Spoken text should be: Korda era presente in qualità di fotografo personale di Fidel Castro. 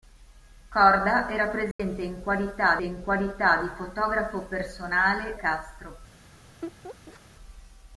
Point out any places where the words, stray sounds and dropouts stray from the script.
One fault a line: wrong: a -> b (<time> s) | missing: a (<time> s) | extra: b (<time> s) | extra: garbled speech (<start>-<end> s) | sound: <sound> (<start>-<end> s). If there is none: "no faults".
sound: dropout (1.7-1.8 s)
extra: in qualità (2.8 s)
missing: di Fidel (5.4 s)
sound: laugh (6.6-7.2 s)